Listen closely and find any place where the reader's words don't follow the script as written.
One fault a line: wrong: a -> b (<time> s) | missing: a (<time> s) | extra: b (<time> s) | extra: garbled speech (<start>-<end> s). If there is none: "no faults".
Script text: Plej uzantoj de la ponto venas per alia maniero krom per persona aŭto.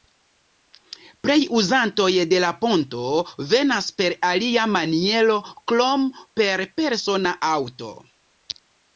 no faults